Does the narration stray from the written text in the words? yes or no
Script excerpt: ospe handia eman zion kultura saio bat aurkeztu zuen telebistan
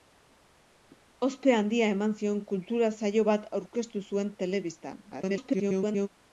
yes